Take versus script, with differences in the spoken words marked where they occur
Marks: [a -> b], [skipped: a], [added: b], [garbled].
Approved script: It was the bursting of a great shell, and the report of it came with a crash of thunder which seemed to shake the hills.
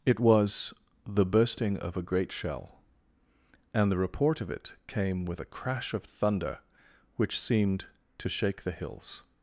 It was the bursting of a great shell, and the report of it came with a crash of thunder which seemed to shake the hills.